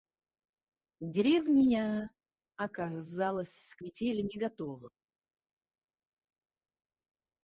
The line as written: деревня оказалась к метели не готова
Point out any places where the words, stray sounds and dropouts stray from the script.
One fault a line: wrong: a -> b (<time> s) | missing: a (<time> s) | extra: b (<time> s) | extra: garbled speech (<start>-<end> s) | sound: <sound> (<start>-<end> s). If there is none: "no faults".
no faults